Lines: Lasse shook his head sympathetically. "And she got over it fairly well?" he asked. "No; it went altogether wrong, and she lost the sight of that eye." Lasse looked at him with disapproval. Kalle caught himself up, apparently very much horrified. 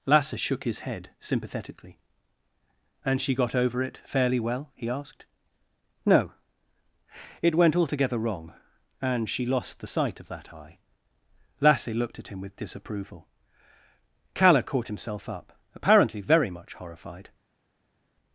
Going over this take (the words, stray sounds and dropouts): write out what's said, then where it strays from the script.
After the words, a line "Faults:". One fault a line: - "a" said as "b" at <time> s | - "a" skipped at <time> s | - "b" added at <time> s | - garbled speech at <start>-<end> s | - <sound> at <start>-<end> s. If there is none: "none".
Lasse shook his head sympathetically. "And she got over it fairly well?" he asked. "No; it went altogether wrong, and she lost the sight of that eye." Lasse looked at him with disapproval. Kalle caught himself up, apparently very much horrified.
Faults:
none